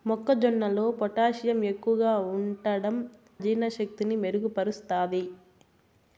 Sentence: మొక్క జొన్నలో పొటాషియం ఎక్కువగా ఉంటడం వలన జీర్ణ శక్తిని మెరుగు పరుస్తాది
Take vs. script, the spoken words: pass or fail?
fail